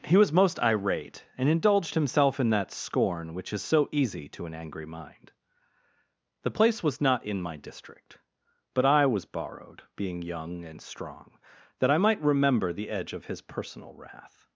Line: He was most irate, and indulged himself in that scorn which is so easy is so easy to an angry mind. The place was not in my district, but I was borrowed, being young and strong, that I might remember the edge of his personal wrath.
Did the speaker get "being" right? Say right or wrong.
right